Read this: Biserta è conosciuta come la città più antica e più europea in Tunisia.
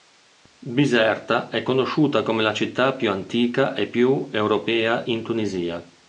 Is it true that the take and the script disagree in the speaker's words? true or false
false